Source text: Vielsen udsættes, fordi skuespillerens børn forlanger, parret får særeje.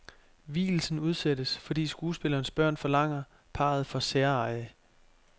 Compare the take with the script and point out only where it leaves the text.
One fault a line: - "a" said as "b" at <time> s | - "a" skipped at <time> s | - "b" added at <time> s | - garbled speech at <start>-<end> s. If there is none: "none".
none